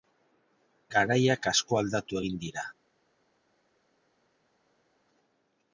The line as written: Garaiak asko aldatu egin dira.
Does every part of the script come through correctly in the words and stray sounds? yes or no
yes